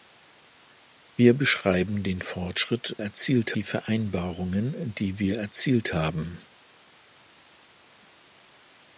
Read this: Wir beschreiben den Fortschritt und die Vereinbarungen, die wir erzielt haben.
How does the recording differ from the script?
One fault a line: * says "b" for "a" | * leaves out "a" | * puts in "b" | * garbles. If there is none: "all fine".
* says "erzielt" for "und"